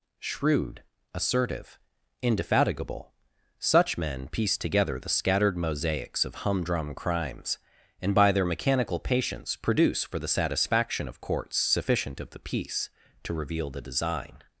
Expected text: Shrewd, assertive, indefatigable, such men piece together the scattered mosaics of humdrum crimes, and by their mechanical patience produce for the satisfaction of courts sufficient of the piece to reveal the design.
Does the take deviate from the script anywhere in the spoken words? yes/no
no